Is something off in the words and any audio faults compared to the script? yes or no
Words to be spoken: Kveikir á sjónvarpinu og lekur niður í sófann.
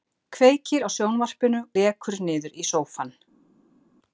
yes